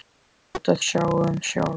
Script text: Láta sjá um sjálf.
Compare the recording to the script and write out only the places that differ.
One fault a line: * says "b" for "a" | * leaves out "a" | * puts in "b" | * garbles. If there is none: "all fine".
all fine